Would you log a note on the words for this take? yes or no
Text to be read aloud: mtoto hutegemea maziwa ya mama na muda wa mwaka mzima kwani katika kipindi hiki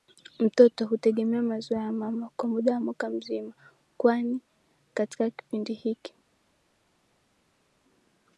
yes